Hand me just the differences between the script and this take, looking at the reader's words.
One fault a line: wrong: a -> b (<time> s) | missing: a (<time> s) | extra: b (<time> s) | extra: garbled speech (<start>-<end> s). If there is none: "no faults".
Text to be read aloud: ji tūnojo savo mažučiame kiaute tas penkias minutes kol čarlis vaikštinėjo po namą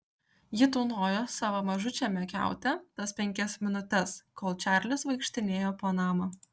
no faults